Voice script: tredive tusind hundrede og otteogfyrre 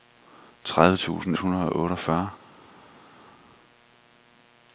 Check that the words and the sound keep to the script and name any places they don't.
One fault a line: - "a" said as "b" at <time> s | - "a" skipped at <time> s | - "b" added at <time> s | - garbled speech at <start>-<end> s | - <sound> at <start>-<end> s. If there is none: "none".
none